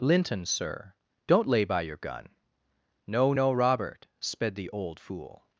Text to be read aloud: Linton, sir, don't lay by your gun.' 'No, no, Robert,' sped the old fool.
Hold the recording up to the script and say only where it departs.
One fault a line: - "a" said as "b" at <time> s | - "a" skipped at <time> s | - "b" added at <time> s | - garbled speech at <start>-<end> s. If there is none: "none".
none